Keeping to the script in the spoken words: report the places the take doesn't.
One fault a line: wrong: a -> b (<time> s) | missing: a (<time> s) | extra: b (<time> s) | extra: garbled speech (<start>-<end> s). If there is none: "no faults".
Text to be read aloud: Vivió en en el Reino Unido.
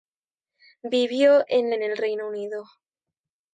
no faults